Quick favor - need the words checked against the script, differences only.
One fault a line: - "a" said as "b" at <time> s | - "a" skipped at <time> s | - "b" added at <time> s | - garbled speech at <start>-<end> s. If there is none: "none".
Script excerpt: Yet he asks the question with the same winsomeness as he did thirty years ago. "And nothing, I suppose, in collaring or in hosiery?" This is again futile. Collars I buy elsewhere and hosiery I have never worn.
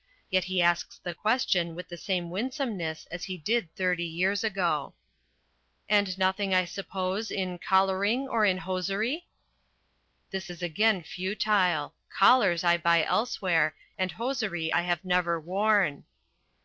none